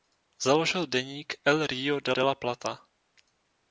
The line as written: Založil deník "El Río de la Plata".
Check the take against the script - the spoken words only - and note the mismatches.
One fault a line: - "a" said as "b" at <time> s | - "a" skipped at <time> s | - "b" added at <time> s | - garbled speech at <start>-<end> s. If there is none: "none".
- "de" added at 2.1 s